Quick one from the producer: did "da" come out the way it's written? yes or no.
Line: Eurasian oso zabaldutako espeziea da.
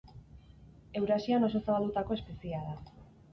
yes